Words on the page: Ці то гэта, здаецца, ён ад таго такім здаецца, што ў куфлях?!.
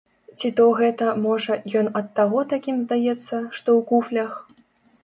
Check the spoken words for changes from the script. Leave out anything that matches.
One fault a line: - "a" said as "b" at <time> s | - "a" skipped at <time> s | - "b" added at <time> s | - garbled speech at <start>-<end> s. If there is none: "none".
- "здаецца" said as "можа" at 1.2 s